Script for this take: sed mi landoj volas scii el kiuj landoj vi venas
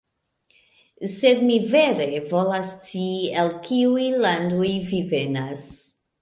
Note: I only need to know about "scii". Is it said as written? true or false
true